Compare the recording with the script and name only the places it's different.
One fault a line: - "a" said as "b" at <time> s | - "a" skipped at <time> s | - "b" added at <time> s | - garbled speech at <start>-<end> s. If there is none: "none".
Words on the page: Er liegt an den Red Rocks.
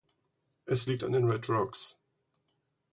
- "Er" said as "Es" at 0.7 s